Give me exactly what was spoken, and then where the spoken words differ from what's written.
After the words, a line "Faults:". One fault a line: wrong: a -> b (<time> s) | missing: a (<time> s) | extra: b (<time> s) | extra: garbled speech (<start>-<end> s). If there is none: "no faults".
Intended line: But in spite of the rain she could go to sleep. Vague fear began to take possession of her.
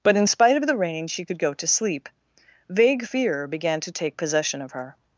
But in spite of the rain she could go to sleep. Vague fear began to take possession of her.
Faults:
no faults